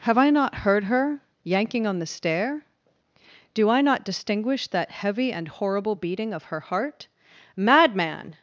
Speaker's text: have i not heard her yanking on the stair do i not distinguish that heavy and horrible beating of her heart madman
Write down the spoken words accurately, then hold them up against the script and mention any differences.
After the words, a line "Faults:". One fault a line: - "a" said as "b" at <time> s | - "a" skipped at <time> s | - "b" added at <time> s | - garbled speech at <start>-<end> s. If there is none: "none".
have i not heard her yanking on the stair do i not distinguish that heavy and horrible beating of her heart madman
Faults:
none